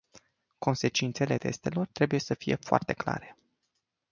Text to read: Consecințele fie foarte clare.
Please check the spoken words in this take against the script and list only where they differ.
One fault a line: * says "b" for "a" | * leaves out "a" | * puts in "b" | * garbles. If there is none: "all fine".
* puts in "testelor trebuie să"